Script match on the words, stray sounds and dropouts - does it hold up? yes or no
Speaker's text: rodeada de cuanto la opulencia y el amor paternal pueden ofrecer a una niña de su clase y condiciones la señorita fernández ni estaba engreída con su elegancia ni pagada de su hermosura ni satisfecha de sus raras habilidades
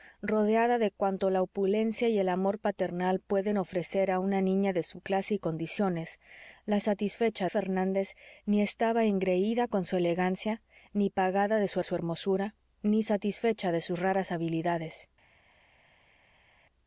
no